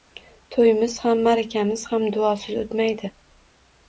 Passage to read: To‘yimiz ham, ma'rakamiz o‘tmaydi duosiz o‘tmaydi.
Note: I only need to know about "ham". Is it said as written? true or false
true